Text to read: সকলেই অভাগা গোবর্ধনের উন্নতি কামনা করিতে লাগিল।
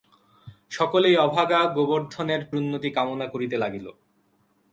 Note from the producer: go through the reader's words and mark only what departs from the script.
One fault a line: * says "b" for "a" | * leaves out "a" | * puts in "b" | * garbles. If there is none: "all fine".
all fine